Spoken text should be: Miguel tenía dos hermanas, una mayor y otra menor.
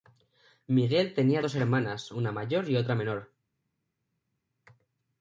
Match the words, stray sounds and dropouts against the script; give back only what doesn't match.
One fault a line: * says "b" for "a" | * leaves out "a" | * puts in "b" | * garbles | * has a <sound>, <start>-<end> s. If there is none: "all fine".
all fine